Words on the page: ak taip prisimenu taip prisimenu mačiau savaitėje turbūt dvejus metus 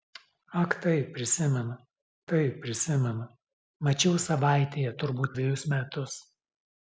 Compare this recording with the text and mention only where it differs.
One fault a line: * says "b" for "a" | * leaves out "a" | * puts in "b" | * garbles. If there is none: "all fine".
all fine